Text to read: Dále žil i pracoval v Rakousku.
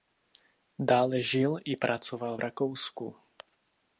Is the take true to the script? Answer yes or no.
yes